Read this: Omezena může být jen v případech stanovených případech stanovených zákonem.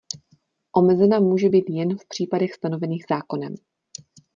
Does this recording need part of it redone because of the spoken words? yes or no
yes